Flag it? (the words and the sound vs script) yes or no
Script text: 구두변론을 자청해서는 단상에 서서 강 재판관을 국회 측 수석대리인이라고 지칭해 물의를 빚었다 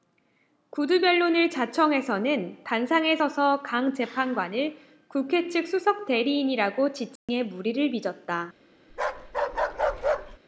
yes